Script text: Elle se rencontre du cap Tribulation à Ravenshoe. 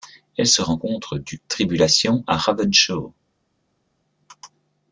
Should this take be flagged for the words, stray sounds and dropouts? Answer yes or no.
yes